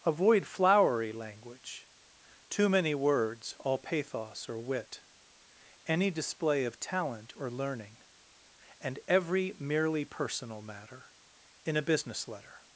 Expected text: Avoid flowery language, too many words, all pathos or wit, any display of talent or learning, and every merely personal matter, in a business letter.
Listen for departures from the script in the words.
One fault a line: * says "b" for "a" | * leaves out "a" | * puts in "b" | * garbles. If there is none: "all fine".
all fine